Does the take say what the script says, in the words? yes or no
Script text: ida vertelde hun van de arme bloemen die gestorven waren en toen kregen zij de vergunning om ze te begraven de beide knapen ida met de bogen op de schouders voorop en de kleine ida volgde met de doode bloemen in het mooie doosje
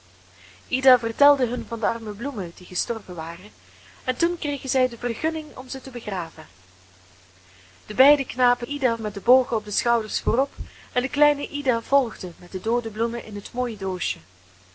yes